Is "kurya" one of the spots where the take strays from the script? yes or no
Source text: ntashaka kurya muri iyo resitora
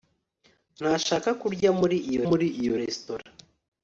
no